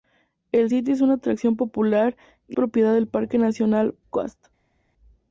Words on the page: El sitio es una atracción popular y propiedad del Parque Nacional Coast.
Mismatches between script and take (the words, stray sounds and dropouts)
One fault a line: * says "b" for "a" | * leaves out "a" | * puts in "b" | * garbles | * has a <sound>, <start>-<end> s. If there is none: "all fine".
all fine